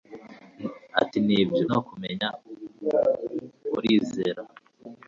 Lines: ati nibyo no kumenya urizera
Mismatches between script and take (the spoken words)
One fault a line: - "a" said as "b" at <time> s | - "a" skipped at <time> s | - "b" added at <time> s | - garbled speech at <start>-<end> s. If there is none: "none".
none